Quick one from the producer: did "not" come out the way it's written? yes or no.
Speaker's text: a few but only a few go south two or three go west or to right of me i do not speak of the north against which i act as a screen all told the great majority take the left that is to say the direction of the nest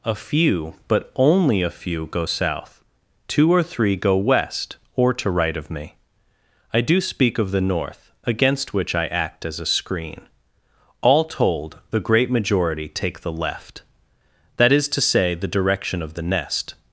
no